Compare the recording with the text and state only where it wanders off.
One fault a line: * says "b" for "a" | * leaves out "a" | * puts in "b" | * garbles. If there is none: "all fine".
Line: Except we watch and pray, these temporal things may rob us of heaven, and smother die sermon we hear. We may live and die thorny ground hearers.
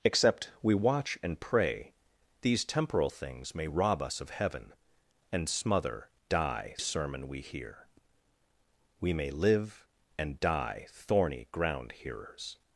all fine